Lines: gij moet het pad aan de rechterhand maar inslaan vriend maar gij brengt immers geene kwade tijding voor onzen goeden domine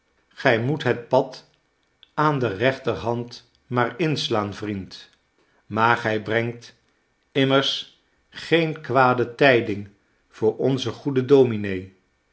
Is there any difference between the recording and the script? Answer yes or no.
no